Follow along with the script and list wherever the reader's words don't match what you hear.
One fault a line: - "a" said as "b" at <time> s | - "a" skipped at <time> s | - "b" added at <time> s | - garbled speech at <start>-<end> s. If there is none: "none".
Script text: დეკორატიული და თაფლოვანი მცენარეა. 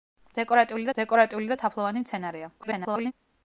- "დეკორატიული" added at 1.0 s
- garbled speech at 2.6-3.1 s